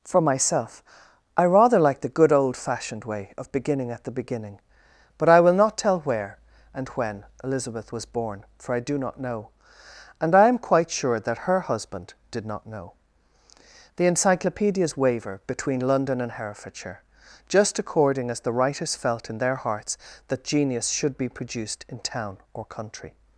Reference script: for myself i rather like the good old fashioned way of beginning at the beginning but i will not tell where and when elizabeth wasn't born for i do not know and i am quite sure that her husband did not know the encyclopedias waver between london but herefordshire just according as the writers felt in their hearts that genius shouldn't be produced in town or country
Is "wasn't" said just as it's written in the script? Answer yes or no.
no